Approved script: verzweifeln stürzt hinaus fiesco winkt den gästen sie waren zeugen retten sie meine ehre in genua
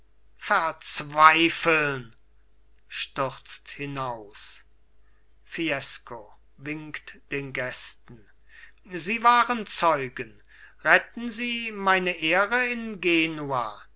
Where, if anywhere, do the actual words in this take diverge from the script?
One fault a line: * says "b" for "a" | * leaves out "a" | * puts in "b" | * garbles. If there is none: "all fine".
all fine